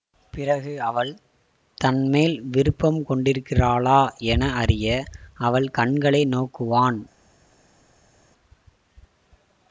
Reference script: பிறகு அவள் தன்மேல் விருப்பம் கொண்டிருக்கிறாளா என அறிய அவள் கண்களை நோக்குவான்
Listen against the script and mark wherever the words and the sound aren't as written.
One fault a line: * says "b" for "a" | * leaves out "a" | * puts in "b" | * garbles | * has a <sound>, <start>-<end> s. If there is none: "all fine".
all fine